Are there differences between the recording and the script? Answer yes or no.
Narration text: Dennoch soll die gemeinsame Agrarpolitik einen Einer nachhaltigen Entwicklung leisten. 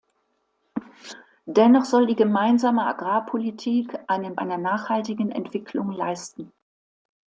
no